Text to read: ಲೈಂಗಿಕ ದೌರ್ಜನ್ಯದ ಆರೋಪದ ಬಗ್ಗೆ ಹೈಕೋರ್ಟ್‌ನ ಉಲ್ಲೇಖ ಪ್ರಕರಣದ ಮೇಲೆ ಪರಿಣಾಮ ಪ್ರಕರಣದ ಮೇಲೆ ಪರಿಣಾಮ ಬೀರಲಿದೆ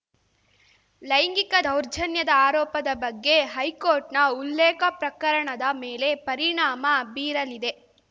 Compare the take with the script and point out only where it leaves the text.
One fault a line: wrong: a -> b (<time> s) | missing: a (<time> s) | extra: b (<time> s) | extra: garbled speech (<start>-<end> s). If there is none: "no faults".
missing: ಪ್ರಕರಣದ ಮೇಲೆ ಪರಿಣಾಮ (6.8 s)